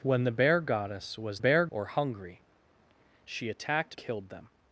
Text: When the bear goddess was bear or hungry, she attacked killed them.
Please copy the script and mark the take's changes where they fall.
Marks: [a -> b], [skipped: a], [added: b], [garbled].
When the bear goddess was bear or hungry, she attacked killed them.